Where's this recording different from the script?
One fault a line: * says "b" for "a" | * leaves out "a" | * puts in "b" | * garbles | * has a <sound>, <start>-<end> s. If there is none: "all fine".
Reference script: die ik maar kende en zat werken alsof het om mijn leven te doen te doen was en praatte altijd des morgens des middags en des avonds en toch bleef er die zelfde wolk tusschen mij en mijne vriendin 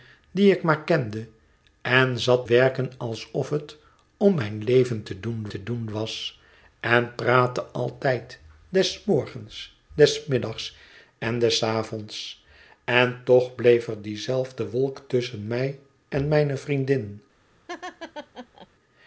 * has a laugh, 17.7-18.7 s